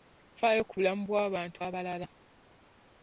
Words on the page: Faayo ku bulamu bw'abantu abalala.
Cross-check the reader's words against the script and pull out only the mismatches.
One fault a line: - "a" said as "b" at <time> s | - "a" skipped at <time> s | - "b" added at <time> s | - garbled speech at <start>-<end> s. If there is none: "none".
none